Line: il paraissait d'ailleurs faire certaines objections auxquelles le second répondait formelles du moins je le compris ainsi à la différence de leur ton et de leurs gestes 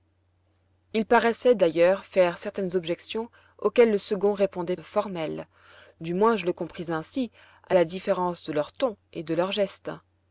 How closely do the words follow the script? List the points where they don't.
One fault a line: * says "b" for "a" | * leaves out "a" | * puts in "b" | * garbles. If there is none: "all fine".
all fine